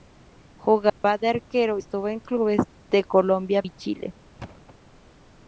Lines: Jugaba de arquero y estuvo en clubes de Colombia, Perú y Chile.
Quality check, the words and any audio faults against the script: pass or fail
fail